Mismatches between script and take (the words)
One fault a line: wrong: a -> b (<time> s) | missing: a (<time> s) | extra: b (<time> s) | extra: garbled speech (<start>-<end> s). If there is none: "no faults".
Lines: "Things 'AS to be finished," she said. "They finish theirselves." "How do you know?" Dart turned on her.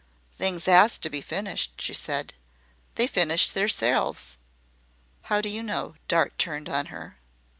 no faults